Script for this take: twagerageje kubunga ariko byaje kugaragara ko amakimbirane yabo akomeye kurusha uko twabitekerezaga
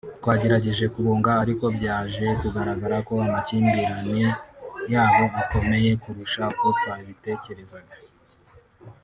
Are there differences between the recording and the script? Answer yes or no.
no